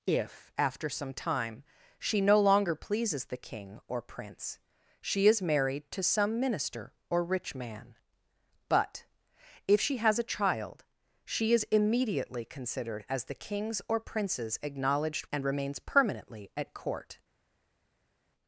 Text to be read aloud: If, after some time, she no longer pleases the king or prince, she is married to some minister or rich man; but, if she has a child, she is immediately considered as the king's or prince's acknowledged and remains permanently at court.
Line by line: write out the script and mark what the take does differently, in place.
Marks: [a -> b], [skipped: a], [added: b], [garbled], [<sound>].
If, after some time, she no longer pleases the king or prince, she is married to some minister or rich man; but, if she has a child, she is immediately considered as the king's or prince's acknowledged and remains permanently at court.